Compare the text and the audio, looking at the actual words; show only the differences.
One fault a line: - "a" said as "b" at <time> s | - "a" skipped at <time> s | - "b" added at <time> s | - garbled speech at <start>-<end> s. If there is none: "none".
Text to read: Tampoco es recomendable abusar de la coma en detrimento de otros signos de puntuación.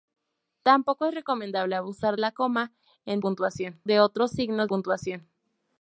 - "de" skipped at 2.2 s
- "detrimento" said as "puntuación" at 3.2 s
- "de" skipped at 4.7 s